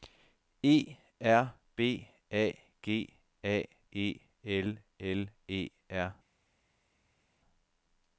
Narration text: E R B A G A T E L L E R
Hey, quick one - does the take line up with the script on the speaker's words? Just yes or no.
no